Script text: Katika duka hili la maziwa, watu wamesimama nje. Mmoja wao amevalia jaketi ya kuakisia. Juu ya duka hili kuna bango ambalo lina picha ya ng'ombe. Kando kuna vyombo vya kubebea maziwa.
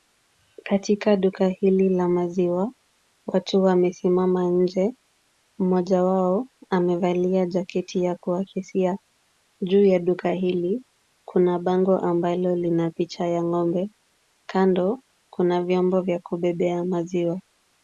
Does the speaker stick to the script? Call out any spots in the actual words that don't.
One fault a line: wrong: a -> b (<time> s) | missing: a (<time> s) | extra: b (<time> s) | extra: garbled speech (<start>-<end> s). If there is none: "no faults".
no faults